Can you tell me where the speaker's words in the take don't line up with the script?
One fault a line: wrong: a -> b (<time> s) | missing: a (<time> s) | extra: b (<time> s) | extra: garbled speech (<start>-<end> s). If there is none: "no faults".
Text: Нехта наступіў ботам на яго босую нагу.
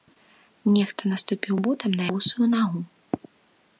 missing: яго (2.0 s)